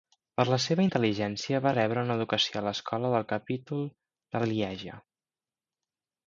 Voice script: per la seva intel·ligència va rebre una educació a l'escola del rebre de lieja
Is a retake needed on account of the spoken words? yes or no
yes